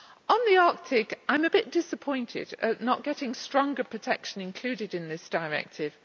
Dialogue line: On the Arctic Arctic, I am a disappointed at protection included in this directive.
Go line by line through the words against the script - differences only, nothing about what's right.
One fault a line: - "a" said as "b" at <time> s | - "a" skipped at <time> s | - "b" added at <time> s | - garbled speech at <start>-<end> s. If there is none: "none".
- "Arctic" skipped at 1.2 s
- "bit" added at 1.5 s
- "not getting stronger" added at 2.8 s